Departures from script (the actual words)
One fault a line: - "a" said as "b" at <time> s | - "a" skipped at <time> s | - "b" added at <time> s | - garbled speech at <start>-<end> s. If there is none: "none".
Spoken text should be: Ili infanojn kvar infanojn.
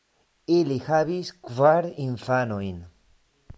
- "infanojn" said as "havis" at 0.9 s